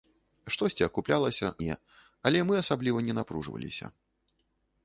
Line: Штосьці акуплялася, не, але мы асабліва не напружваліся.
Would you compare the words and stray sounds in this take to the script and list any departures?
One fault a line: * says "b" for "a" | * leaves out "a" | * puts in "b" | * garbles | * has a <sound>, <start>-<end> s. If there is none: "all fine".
all fine